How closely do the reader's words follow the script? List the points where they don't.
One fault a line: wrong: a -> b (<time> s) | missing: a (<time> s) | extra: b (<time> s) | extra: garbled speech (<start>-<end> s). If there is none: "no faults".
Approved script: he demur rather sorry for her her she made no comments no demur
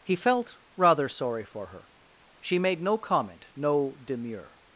wrong: demur -> felt (0.1 s)
missing: her (1.9 s)
wrong: comments -> comment (3.0 s)